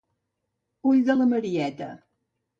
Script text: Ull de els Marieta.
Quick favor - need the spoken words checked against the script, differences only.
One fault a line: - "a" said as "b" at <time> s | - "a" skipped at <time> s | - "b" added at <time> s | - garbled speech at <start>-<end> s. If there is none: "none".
- "els" said as "la" at 1.2 s